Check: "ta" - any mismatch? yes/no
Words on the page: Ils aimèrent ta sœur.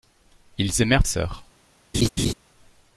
yes